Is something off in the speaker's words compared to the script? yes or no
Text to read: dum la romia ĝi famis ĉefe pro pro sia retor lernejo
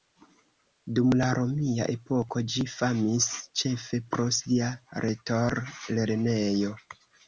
yes